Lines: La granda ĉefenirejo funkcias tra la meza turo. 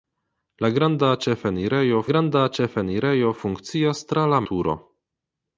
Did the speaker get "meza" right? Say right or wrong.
wrong